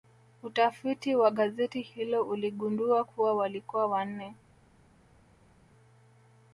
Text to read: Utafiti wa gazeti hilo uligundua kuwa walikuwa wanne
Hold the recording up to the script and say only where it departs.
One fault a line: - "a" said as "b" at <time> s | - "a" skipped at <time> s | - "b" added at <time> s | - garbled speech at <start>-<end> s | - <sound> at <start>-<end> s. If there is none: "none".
none